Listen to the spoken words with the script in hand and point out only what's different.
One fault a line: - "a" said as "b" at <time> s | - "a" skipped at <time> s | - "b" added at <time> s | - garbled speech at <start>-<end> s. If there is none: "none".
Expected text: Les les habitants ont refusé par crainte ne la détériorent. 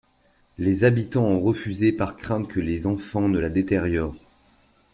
- "les" skipped at 0.8 s
- "que les enfants" added at 2.5 s